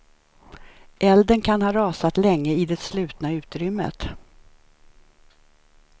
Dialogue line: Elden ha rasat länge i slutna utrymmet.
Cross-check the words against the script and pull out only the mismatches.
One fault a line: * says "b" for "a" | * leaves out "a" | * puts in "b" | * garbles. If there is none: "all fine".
* puts in "kan"
* puts in "det"